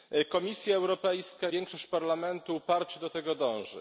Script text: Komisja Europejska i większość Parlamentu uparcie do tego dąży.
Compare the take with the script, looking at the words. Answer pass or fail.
fail